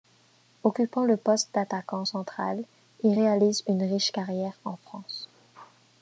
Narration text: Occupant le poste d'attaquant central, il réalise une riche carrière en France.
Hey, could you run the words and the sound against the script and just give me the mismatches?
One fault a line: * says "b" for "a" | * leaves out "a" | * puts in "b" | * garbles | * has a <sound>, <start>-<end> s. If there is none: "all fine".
all fine